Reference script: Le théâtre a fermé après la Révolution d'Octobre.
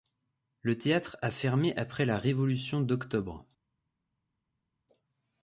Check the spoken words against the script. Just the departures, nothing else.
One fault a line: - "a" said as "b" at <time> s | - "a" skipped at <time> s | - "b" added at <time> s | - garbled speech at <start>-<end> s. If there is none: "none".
none